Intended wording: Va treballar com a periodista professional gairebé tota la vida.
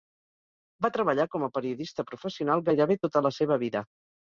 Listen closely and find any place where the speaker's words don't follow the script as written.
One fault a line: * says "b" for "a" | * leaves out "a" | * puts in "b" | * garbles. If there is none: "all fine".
* puts in "seva"